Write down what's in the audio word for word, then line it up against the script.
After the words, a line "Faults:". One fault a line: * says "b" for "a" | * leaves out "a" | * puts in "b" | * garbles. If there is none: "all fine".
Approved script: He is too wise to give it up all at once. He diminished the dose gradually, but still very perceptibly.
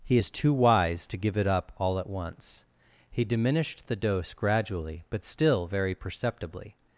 He is too wise to give it up all at once. He diminished the dose gradually, but still very perceptibly.
Faults:
all fine